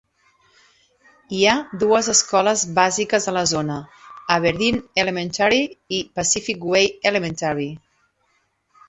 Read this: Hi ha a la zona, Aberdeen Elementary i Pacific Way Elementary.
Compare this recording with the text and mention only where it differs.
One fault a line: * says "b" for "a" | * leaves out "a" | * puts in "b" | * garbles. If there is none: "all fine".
* puts in "dues escoles bàsiques"